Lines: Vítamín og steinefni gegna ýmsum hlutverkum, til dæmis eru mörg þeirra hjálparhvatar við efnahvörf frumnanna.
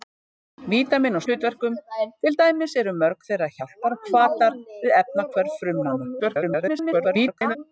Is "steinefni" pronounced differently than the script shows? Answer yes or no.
yes